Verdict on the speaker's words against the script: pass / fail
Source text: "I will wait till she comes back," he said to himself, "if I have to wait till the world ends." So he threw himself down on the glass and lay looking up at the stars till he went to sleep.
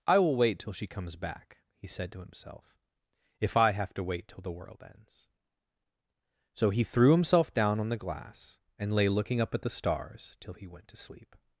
pass